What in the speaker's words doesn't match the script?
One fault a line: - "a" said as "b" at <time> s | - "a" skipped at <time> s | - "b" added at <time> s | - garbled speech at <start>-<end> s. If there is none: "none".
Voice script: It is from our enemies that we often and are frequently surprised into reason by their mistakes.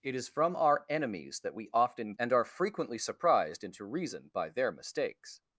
none